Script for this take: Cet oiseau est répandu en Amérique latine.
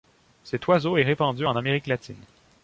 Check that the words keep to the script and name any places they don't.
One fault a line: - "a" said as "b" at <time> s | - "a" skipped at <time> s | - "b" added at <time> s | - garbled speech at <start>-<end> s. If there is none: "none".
none